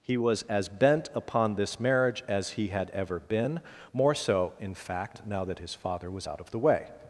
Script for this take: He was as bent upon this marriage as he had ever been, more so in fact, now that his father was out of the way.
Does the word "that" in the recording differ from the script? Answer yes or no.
no